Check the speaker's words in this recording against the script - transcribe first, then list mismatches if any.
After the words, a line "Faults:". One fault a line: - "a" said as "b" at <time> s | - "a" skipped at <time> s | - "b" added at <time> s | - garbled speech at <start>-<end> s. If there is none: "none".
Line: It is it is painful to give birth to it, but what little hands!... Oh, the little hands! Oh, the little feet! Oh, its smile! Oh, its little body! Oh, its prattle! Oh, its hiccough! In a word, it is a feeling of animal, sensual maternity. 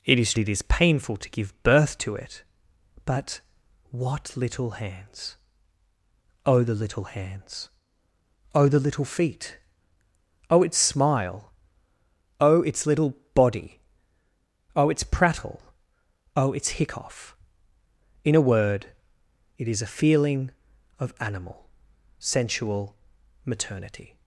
It is it is painful to give birth to it, but what little hands!... Oh, the little hands! Oh, the little feet! Oh, its smile! Oh, its little body! Oh, its prattle! Oh, its hiccough! In a word, it is a feeling of animal, sensual maternity.
Faults:
none